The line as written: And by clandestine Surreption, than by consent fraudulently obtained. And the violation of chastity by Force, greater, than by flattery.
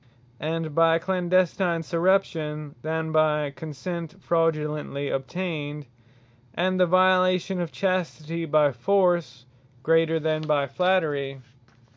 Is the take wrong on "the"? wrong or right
right